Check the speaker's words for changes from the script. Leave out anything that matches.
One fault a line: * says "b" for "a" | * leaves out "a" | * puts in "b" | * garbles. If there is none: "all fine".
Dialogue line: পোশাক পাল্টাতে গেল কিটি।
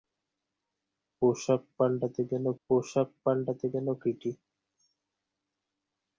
* puts in "পোশাক পাল্টাতে গেল"